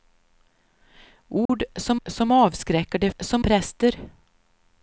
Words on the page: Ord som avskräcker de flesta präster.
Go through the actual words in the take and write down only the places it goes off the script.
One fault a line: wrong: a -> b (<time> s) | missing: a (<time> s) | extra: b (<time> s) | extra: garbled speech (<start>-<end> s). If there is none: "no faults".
extra: som (2.1 s)
wrong: flesta -> som (3.2 s)